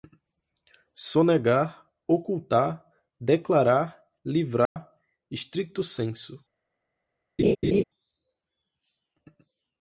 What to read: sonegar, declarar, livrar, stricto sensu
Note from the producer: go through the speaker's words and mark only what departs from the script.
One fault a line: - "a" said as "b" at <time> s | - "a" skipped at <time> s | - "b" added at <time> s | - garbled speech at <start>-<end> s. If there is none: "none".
- "ocultar" added at 2.1 s